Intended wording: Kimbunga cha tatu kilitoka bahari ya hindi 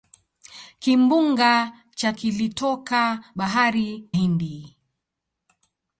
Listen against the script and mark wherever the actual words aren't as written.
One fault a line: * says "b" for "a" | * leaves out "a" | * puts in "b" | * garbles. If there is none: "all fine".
* leaves out "tatu"
* leaves out "ya"